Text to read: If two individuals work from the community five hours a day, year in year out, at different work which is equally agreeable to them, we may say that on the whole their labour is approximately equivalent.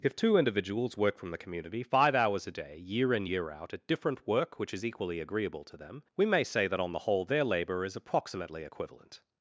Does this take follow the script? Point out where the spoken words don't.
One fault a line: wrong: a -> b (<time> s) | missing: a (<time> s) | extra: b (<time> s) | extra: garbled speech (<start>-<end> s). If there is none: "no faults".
no faults